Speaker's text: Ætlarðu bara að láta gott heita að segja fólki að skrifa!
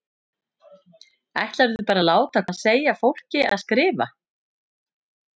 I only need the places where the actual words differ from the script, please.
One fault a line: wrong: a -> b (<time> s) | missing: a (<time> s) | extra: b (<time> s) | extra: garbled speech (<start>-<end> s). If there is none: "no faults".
missing: gott heita (2.4 s)